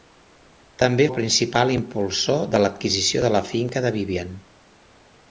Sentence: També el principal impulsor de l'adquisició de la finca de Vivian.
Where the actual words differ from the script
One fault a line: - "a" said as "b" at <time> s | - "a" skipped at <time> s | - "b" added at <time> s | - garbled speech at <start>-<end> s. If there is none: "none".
none